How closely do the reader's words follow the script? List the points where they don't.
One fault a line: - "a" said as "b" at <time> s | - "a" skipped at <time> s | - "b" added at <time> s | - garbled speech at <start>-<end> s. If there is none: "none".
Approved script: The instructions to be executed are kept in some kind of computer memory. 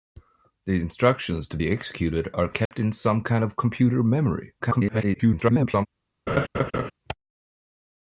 - garbled speech at 4.6-5.9 s